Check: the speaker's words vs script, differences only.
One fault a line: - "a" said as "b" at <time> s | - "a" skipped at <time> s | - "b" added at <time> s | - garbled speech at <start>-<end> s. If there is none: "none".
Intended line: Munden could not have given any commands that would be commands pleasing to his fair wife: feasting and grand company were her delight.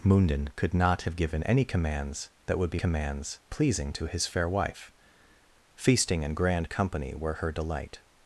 none